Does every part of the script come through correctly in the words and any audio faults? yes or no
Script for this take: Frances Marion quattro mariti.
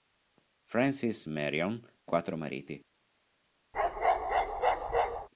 no